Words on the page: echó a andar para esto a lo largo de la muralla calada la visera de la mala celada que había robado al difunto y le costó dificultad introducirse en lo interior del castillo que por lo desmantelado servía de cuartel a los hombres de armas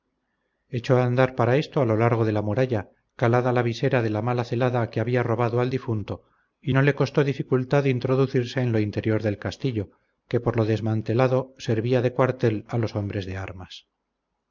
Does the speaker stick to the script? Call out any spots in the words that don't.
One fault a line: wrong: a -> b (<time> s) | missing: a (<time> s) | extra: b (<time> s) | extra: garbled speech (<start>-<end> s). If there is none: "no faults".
extra: no (6.7 s)